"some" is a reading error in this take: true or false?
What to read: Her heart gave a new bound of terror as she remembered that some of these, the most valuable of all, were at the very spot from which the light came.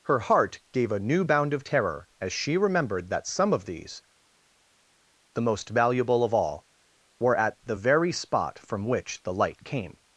false